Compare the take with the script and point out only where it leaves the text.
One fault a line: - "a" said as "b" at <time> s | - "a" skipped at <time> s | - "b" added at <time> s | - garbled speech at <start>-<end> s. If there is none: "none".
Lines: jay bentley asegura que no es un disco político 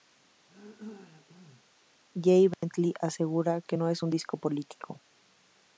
none